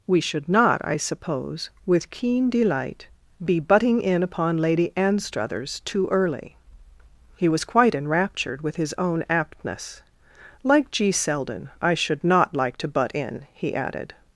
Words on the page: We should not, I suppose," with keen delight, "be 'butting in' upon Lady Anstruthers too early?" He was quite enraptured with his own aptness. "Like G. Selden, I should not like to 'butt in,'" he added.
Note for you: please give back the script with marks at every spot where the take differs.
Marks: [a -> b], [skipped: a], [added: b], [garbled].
We should not, I suppose," with keen delight, "be 'butting in' upon Lady Anstruthers too early?" He was quite enraptured with his own aptness. "Like G. Selden, I should not like to 'butt in,'" he added.